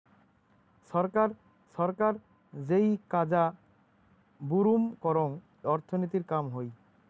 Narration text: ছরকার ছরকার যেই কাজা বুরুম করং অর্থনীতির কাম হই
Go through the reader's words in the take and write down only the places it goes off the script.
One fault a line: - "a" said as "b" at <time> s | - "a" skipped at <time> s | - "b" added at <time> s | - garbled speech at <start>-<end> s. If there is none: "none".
none